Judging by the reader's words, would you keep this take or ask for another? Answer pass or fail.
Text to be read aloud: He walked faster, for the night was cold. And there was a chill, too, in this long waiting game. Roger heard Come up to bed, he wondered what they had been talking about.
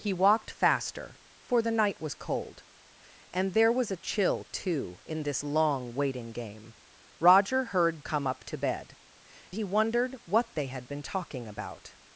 pass